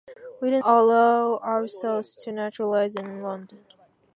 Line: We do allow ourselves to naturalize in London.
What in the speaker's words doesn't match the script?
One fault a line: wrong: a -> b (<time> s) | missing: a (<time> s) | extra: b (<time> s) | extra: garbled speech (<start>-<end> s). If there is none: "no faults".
no faults